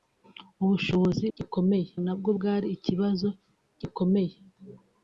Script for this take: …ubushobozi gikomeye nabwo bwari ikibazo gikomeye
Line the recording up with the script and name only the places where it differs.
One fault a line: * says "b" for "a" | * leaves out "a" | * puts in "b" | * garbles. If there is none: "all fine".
all fine